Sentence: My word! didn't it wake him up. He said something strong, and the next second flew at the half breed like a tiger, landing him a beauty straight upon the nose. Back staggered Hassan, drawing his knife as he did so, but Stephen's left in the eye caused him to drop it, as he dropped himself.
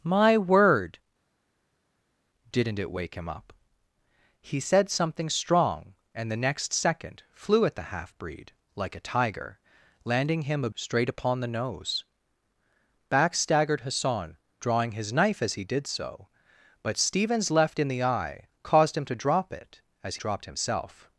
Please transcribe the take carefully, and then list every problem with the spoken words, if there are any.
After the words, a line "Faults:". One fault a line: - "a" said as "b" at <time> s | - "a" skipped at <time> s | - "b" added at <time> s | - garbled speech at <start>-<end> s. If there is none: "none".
My word! didn't it wake him up. He said something strong, and the next second flew at the half breed like a tiger, landing him a straight upon the nose. Back staggered Hassan, drawing his knife as he did so, but Stephen's left in the eye caused him to drop it, as dropped himself.
Faults:
- "beauty" skipped at 10.7 s
- "he" skipped at 20.2 s